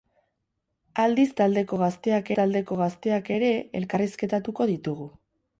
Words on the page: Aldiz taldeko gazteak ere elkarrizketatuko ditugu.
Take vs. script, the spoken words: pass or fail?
fail